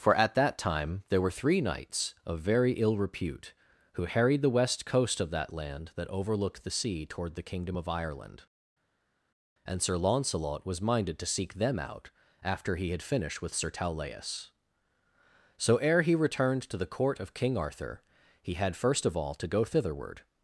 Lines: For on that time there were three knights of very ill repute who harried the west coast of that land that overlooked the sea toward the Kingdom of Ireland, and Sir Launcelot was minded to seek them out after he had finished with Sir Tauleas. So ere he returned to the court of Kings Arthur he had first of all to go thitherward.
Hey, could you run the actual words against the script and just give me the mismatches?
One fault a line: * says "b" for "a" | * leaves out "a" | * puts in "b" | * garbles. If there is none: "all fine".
* says "at" for "on"
* says "King" for "Kings"